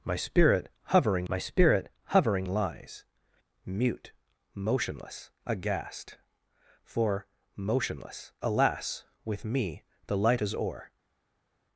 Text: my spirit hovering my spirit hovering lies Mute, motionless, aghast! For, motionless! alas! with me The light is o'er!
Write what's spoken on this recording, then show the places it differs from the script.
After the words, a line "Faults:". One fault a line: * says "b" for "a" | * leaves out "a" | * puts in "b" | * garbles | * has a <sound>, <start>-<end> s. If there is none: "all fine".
my spirit hovering my spirit hovering lies Mute, motionless, aghast! For, motionless! alas! with me The light is o'er!
Faults:
all fine